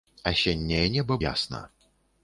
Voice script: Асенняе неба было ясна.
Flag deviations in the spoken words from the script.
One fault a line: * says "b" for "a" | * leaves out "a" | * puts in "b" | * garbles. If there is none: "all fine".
* leaves out "было"